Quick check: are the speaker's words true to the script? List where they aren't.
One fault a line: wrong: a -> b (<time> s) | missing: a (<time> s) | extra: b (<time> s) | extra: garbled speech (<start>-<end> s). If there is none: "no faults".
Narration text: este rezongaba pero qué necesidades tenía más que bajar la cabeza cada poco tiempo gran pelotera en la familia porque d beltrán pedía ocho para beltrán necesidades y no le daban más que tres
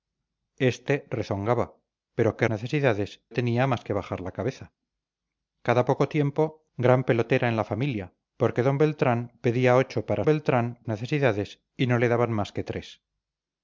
no faults